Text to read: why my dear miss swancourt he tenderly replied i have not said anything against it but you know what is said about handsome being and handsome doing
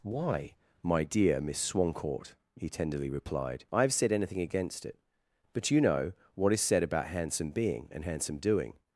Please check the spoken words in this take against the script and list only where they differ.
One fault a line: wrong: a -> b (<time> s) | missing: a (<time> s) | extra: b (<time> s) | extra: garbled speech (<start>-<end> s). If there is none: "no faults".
missing: not (3.9 s)